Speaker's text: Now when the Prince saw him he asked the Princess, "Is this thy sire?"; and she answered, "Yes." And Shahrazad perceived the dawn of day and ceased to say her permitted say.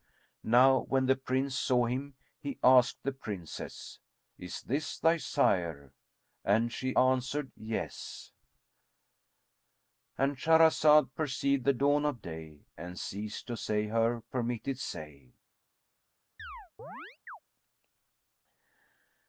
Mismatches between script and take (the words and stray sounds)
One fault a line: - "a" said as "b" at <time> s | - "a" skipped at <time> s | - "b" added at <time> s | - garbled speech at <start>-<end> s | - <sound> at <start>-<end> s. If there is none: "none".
- chirp at 16.4-17.4 s